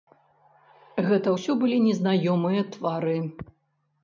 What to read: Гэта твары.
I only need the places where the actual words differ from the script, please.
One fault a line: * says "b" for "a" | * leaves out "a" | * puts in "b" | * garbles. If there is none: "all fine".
* puts in "ўсё былі незнаёмыя"